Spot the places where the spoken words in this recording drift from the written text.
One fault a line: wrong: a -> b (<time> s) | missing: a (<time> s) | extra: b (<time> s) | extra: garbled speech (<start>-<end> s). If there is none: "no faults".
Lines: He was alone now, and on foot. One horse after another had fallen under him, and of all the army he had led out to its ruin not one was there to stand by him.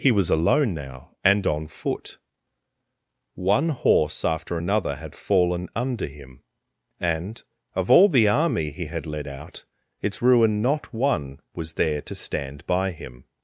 missing: to (9.7 s)